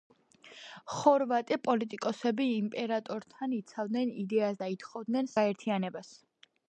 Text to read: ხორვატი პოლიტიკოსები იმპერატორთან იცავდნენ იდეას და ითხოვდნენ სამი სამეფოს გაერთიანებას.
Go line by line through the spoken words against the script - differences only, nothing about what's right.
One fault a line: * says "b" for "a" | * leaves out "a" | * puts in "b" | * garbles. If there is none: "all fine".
* leaves out "სამი სამეფოს"